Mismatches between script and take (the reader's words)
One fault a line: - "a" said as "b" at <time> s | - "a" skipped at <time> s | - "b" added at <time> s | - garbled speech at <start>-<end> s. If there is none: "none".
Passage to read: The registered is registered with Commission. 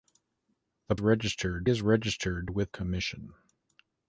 none